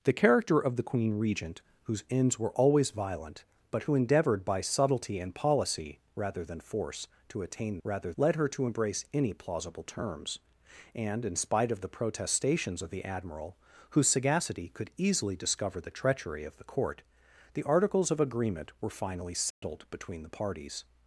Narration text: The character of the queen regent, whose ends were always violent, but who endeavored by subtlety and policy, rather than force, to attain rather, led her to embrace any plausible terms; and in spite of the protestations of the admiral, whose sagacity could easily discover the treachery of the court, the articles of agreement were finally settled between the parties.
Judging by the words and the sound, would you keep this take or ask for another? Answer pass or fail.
fail